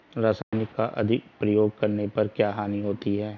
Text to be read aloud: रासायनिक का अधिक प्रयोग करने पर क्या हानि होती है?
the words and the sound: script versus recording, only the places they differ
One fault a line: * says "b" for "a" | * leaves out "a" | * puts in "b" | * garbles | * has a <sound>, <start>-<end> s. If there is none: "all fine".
* has a dropout, 0.4-0.5 s